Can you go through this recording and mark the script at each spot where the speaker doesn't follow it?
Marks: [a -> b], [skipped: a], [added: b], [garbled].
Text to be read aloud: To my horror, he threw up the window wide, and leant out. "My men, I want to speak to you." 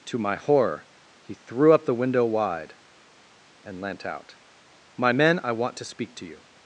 To my horror, he threw up the window wide, and leant out. "My men, I want to speak to you."